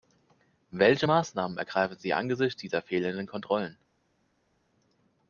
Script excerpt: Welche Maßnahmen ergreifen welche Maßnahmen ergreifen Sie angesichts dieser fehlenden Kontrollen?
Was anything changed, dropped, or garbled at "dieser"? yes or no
no